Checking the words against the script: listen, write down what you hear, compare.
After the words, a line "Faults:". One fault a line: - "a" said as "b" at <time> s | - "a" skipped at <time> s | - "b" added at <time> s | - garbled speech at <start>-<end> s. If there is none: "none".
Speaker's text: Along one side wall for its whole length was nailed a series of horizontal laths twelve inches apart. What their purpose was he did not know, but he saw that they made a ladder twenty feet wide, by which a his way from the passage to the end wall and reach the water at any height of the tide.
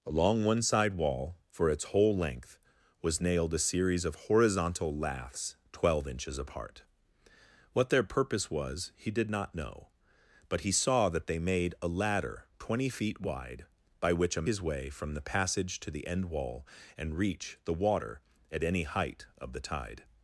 Along one side wall for its whole length was nailed a series of horizontal laths twelve inches apart. What their purpose was he did not know, but he saw that they made a ladder twenty feet wide, by which a his way from the passage to the end wall and reach the water at any height of the tide.
Faults:
none